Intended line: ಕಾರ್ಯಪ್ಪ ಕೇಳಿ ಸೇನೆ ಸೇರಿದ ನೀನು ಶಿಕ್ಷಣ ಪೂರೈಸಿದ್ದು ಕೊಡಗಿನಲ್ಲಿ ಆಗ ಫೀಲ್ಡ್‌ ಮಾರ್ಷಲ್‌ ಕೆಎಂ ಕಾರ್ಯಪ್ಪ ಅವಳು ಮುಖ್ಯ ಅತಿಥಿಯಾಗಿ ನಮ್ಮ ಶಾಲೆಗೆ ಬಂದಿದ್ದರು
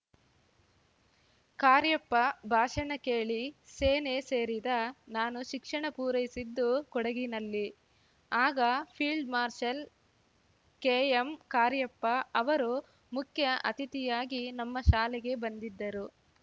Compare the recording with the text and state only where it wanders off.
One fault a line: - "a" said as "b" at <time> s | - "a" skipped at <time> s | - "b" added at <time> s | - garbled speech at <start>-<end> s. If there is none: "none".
- "ಭಾಷಣ" added at 2.5 s
- "ನೀನು" said as "ನಾನು" at 5.2 s
- "ಅವಳು" said as "ಅವರು" at 12.3 s